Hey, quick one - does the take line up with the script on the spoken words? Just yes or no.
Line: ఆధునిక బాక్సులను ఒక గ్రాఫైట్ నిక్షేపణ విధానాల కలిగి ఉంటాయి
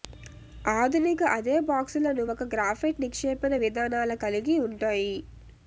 no